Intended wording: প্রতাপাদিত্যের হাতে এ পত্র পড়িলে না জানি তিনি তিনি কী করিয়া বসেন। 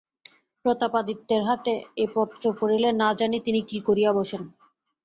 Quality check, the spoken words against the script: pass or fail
fail